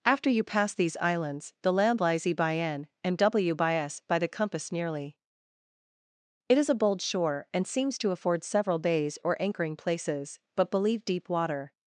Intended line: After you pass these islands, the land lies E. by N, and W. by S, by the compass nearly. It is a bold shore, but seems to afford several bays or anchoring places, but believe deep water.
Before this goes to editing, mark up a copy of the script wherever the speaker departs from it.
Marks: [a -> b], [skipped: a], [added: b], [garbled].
After you pass these islands, the land lies E. by N, and W. by S, by the compass nearly. It is a bold shore, [but -> and] seems to afford several bays or anchoring places, but believe deep water.